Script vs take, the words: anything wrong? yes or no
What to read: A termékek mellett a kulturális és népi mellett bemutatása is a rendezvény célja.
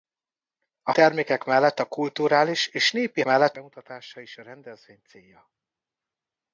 no